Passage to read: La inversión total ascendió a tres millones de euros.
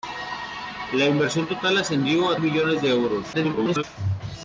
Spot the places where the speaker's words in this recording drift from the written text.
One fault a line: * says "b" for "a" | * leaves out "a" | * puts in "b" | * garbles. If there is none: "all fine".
* leaves out "tres"
* garbles